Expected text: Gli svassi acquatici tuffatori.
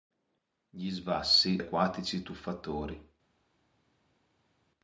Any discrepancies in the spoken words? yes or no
no